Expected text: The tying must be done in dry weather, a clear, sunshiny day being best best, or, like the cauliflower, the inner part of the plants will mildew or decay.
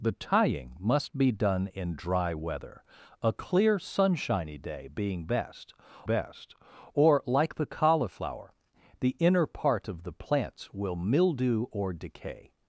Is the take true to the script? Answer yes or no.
yes